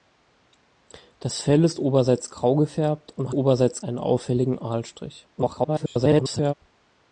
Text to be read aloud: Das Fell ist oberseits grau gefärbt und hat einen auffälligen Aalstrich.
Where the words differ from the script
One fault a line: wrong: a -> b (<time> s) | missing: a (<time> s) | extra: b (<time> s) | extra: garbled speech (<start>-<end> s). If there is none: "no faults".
wrong: hat -> oberseits (3.3 s)
extra: garbled speech (5.4-6.5 s)